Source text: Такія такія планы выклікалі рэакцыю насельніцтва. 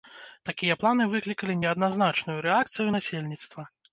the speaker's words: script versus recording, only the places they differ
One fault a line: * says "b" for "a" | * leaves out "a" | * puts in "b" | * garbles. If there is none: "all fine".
* leaves out "такія"
* puts in "неадназначную"